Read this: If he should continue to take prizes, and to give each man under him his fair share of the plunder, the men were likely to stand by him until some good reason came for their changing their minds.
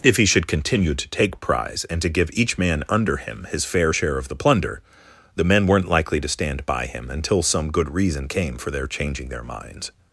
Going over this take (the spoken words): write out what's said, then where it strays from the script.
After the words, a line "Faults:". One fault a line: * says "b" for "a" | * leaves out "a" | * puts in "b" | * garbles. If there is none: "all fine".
If he should continue to take prize, and to give each man under him his fair share of the plunder, the men weren't likely to stand by him until some good reason came for their changing their minds.
Faults:
* says "prize" for "prizes"
* says "weren't" for "were"